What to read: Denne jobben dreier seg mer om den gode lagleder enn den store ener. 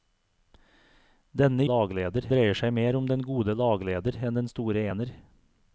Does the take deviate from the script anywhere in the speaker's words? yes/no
yes